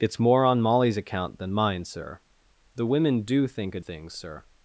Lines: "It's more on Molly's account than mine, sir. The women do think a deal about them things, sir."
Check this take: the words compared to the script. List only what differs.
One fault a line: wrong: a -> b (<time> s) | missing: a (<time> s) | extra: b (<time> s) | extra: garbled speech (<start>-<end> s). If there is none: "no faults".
missing: deal about them (3.8 s)